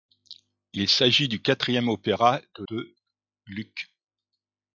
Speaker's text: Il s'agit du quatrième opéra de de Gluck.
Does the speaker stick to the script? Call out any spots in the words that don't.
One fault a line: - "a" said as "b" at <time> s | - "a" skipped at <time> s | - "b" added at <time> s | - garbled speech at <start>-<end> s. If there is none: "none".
none